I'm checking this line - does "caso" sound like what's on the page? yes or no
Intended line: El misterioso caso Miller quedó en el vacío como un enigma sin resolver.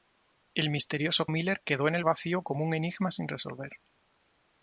no